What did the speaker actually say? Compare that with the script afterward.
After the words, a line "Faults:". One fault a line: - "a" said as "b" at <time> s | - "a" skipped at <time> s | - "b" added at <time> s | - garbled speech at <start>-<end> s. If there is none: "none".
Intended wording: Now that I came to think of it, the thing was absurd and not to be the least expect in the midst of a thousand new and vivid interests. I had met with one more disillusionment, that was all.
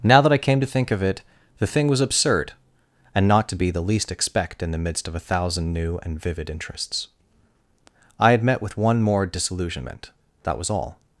Now that I came to think of it, the thing was absurd and not to be the least expect in the midst of a thousand new and vivid interests. I had met with one more disillusionment, that was all.
Faults:
none